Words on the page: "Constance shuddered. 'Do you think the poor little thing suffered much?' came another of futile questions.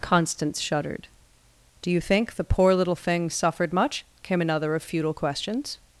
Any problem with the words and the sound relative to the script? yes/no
no